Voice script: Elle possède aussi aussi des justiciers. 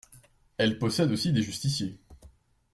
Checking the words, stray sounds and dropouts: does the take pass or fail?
fail